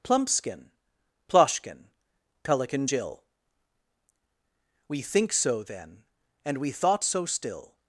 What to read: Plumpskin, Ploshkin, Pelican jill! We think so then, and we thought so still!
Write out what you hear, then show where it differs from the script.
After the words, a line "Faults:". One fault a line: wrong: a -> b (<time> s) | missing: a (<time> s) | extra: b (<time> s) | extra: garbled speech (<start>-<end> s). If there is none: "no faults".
Plumpskin, Ploshkin, Pelican jill! We think so then, and we thought so still!
Faults:
no faults